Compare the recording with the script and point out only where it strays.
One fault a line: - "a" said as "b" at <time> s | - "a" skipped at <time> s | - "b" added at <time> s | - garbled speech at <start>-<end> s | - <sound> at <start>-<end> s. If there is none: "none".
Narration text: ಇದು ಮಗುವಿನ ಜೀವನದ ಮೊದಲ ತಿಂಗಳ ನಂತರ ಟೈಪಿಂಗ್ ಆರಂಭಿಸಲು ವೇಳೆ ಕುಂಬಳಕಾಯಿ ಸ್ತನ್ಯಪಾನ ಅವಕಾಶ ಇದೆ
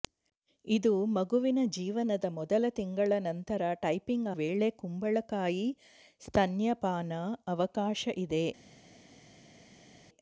- "ಆರಂಭಿಸಲು" skipped at 4.3 s